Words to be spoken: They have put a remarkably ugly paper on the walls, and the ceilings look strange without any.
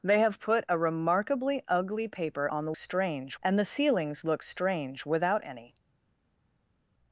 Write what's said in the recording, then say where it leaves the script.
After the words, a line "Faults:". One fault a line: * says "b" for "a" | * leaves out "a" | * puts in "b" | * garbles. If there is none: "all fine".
They have put a remarkably ugly paper on the strange, and the ceilings look strange without any.
Faults:
* says "strange" for "walls"